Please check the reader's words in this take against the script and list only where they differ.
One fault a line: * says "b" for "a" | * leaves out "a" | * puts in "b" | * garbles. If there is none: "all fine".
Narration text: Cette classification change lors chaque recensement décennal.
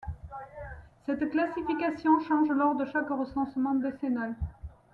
* puts in "de"